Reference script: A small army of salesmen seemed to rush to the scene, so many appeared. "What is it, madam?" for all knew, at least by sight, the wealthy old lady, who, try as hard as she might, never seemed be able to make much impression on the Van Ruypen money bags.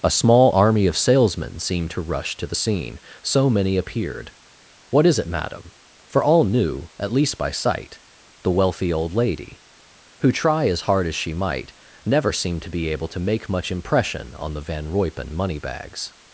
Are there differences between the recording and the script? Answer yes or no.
yes